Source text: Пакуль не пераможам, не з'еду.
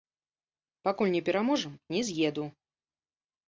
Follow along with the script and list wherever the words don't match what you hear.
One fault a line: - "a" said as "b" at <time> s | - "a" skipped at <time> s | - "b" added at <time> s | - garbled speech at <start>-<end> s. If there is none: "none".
none